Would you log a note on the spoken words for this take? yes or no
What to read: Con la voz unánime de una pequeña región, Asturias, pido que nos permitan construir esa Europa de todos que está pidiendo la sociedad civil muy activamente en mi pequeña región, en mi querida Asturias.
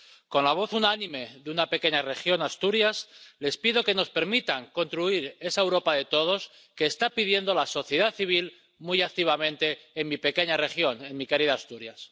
yes